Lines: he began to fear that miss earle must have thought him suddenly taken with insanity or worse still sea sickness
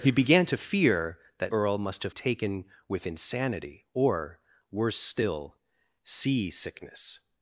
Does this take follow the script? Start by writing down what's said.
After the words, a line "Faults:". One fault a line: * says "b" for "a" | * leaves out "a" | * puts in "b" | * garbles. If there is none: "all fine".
he began to fear that earle must have taken with insanity or worse still sea sickness
Faults:
* leaves out "miss"
* leaves out "thought him suddenly"